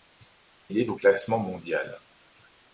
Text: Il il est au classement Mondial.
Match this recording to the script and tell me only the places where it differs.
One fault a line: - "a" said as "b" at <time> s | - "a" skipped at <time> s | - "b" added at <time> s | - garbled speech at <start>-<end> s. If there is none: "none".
- "il" skipped at 0.8 s